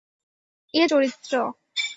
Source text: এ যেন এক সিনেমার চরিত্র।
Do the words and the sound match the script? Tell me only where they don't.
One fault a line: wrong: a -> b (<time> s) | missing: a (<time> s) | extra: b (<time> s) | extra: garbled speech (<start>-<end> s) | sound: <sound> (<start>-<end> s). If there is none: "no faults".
missing: যেন এক সিনেমার (0.8 s)